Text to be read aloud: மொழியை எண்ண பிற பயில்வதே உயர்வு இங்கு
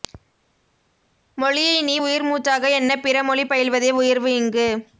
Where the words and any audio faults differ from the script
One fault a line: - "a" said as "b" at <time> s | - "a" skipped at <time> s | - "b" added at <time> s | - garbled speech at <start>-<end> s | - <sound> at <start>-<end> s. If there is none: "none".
- "நீ உயிர்மூச்சாக" added at 1.8 s
- "மொழி" added at 3.2 s